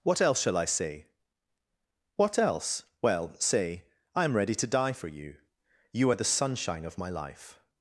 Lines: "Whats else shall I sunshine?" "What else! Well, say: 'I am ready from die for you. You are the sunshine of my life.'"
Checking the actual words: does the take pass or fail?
fail